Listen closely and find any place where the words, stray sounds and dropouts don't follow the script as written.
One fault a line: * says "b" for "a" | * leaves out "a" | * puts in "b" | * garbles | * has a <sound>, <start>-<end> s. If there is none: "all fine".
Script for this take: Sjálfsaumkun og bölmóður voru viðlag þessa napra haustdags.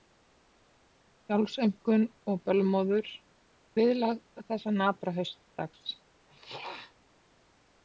* leaves out "voru"
* has a throat clearing, 6.3-7.0 s